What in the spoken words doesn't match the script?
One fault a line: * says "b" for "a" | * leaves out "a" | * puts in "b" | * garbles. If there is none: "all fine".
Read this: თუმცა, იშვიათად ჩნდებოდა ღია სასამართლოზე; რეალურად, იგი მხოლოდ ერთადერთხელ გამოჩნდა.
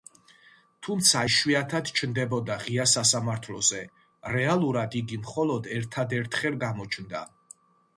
all fine